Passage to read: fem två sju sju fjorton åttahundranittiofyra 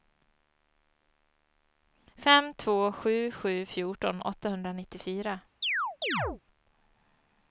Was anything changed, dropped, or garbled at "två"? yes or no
no